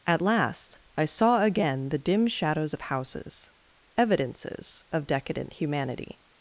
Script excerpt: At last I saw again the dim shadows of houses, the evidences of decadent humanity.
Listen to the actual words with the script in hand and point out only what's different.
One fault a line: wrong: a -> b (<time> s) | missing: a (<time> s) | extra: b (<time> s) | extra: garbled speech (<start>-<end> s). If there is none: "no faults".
missing: the (3.5 s)